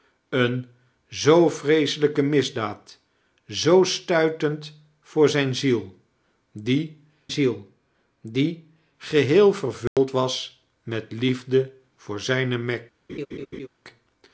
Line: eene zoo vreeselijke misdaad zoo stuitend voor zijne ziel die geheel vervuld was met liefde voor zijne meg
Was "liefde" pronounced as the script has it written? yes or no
yes